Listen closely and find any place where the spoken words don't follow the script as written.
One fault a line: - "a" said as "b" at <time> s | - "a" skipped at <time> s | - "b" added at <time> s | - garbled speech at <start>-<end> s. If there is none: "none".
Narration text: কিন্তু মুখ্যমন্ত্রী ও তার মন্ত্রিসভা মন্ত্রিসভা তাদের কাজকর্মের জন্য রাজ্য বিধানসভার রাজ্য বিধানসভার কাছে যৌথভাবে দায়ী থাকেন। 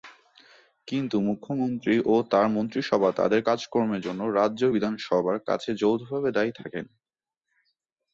- "মন্ত্রিসভা" skipped at 3.1 s
- "রাজ্য বিধানসভার" skipped at 5.4 s